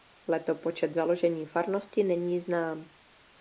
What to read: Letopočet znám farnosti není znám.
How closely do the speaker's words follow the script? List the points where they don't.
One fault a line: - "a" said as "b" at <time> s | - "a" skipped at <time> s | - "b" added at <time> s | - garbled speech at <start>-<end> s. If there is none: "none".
- "znám" said as "založení" at 0.9 s